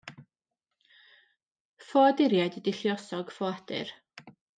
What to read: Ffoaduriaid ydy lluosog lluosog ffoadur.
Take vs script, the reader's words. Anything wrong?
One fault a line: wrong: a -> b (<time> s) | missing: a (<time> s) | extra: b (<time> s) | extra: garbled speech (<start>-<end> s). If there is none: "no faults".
missing: lluosog (3.4 s)